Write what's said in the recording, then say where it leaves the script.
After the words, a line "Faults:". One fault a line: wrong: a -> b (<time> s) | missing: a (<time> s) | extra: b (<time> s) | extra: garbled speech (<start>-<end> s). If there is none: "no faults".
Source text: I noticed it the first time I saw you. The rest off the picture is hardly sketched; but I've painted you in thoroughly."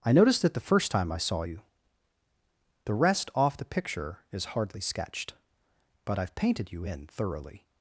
I noticed it the first time I saw you. The rest off the picture is hardly sketched; but I've painted you in thoroughly."
Faults:
no faults